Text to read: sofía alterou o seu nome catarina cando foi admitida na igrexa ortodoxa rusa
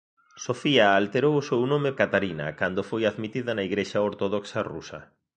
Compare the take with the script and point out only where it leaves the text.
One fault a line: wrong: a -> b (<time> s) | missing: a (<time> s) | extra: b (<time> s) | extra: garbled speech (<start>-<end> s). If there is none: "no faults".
no faults